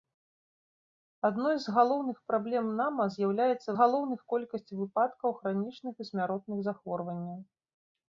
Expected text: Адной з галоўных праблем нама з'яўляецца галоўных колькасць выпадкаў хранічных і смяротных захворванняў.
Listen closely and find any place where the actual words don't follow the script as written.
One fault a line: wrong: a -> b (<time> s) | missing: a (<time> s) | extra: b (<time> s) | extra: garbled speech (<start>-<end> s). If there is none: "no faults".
no faults